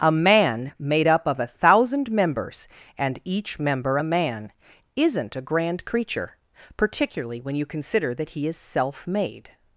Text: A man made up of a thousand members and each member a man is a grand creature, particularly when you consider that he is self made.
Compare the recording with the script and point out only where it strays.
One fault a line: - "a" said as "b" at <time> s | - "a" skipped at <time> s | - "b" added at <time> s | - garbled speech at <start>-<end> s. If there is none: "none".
- "is" said as "isn't" at 5.0 s